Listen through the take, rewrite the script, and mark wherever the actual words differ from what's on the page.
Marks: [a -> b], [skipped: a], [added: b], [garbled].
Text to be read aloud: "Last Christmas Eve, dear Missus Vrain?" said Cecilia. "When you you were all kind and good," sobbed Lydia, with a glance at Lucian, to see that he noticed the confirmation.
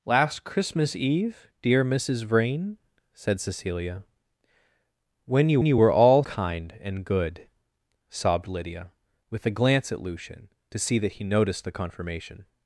"Last Christmas Eve, dear Missus Vrain?" said Cecilia. "When you you were all kind and good," sobbed Lydia, with a glance at Lucian, to see that he noticed the confirmation.